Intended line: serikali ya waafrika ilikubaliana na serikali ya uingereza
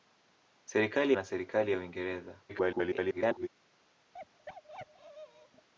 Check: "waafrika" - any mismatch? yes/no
yes